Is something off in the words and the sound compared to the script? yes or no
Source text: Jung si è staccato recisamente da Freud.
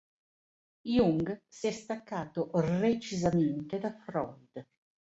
no